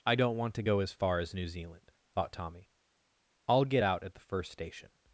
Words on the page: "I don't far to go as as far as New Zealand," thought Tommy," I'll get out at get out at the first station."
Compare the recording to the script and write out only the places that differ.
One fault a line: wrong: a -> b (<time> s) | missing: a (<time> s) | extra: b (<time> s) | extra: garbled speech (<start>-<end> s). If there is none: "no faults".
wrong: far -> want (0.4 s)
missing: as (0.9 s)
missing: get out at (4.1 s)